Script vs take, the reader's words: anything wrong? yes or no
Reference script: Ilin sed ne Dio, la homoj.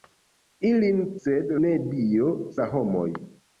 no